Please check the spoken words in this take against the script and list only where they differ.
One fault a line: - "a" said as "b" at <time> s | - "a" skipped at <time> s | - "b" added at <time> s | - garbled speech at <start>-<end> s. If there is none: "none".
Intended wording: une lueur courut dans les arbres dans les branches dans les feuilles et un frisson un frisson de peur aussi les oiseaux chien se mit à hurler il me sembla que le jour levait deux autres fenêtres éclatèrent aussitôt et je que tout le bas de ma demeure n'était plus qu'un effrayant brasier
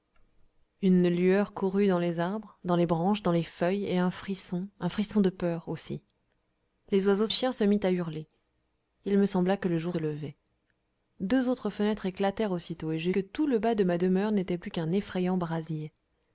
none